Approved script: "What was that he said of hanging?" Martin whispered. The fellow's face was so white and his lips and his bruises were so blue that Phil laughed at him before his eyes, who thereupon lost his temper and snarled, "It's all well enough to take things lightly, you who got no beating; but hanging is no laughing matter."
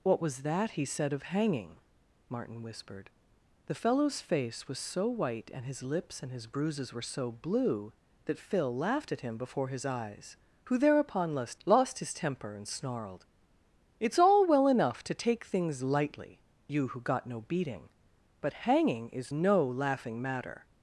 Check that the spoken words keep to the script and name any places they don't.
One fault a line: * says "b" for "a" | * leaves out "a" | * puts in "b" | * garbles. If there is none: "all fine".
* puts in "lost"